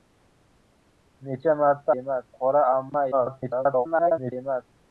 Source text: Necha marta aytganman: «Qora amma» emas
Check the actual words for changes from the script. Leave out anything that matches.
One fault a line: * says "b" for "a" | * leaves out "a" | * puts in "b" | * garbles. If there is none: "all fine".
* says "emas" for "aytganman"
* garbles